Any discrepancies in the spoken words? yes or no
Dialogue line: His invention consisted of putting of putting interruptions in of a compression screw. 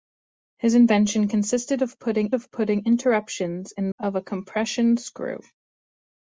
no